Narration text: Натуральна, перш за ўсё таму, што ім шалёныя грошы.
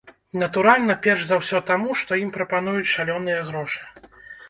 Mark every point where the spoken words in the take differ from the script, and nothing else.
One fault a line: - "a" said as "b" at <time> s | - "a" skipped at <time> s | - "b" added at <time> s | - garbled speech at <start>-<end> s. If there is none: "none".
- "прапануюць" added at 2.4 s